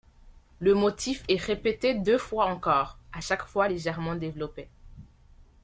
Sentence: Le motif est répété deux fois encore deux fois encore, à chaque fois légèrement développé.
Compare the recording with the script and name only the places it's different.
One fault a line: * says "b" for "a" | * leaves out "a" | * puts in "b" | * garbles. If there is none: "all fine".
* leaves out "deux fois encore"